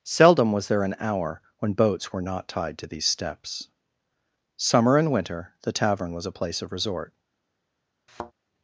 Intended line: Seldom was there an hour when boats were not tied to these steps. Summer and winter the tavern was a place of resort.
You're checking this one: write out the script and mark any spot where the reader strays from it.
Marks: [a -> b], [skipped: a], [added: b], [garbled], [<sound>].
Seldom was there an hour when boats were not tied to these steps. Summer and winter the tavern was a place of resort. [thud]